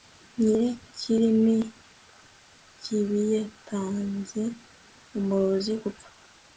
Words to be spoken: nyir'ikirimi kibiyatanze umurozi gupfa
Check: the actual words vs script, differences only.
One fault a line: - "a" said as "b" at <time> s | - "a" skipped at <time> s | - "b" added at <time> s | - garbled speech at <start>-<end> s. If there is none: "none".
none